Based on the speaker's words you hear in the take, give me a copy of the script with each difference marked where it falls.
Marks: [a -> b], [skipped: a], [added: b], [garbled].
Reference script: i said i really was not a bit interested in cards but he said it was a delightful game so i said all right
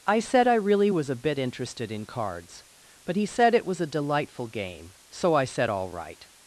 i said i really was [skipped: not] a bit interested in cards but he said it was a delightful game so i said all right